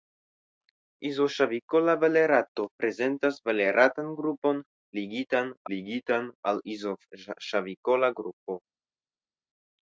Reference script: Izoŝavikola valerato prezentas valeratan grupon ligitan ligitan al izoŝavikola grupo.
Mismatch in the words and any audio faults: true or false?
false